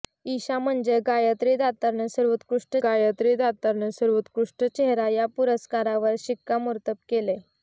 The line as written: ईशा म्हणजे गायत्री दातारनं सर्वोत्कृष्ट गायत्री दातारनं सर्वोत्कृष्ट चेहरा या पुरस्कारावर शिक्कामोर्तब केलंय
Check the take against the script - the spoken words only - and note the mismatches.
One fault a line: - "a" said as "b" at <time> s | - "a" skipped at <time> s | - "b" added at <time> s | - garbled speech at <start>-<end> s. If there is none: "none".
none